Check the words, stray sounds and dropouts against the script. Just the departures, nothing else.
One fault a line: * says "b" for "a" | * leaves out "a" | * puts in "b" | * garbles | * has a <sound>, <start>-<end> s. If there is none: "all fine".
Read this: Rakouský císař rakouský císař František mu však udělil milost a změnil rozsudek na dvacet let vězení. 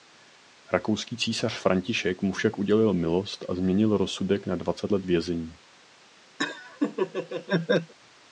* leaves out "rakouský císař"
* has a laugh, 6.4-7.9 s